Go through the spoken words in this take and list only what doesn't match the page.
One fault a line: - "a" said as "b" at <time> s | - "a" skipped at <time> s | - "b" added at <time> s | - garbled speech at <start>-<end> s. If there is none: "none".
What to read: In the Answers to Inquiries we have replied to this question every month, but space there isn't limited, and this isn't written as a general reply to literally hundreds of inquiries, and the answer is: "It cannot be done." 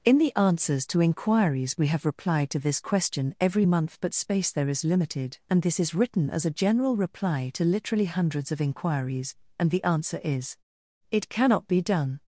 - "isn't" said as "is" at 4.7 s
- "isn't" said as "is" at 5.8 s